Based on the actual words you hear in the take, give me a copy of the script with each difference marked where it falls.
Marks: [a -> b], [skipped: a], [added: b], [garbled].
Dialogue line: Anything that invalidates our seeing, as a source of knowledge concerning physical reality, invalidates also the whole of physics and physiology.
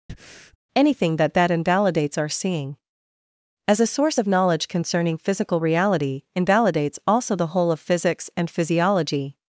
Anything that [added: that] invalidates our seeing, as a source of knowledge concerning physical reality, invalidates also the whole of physics and physiology.